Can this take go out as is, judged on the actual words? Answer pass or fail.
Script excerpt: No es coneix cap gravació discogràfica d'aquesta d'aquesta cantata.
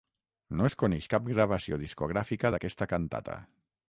fail